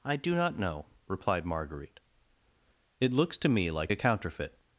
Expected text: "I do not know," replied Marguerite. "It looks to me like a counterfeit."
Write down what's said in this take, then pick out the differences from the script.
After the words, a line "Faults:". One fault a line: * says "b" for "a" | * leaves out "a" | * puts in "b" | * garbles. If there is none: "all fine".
"I do not know," replied Marguerite. "It looks to me like a counterfeit."
Faults:
all fine